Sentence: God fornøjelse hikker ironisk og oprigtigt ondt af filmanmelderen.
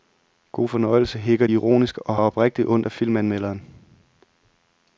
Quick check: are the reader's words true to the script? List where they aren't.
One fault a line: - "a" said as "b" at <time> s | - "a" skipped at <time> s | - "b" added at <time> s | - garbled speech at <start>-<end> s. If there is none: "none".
none